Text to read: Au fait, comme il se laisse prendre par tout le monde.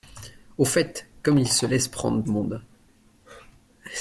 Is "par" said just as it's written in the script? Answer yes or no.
no